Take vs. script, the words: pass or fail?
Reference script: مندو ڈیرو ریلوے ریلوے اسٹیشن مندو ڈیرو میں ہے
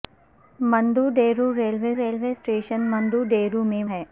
pass